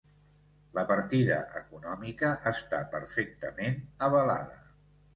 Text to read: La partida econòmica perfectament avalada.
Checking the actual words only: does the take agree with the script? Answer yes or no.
no